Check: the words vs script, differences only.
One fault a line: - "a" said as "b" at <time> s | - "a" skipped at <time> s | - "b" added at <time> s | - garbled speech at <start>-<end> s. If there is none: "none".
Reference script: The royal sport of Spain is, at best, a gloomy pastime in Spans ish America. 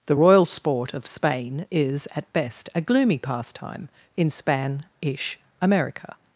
- "Spans" said as "Span" at 4.3 s